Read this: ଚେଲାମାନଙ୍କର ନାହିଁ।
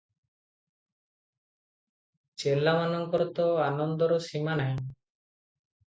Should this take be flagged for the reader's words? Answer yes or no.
yes